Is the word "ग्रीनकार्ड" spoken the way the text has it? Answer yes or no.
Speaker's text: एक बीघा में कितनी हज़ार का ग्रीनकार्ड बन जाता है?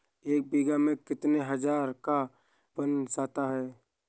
no